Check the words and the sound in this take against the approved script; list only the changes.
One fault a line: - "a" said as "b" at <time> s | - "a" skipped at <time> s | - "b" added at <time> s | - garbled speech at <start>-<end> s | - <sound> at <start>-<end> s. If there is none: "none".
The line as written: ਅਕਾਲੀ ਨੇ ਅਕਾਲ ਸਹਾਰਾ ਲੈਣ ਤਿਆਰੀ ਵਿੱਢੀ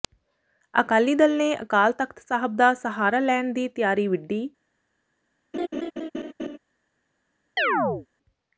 - "ਦਲ" added at 1.1 s
- "ਤਖ਼ਤ ਸਾਹਿਬ ਦਾ" added at 1.9 s
- "ਦੀ" added at 3.5 s
- laugh at 5.5-6.6 s
- chirp at 7.6-8.1 s